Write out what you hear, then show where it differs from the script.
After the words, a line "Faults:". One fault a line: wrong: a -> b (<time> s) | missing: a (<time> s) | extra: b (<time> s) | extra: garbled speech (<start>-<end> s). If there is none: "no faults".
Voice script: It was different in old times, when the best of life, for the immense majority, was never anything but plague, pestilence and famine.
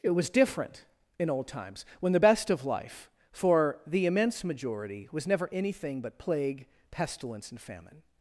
It was different in old times, when the best of life, for the immense majority, was never anything but plague, pestilence and famine.
Faults:
no faults